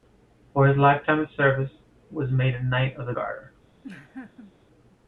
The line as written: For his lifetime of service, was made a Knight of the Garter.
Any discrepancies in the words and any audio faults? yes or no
yes